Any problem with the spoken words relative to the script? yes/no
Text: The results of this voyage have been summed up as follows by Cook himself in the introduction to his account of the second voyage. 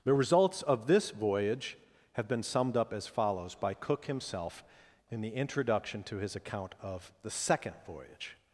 no